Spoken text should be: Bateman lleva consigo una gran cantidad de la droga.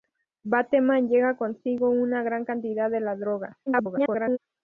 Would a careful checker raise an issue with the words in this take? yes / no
yes